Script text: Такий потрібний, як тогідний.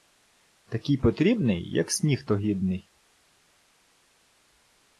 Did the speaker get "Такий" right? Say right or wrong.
right